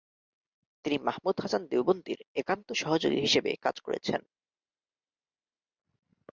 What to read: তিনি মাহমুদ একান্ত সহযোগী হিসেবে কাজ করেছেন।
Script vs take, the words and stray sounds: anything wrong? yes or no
yes